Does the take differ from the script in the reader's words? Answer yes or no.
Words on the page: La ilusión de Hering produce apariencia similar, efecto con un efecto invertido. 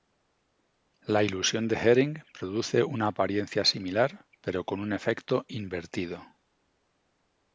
yes